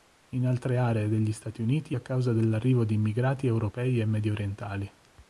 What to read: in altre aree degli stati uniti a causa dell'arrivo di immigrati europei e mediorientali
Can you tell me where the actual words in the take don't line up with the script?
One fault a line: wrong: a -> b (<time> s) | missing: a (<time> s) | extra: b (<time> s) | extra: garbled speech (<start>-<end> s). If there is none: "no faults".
no faults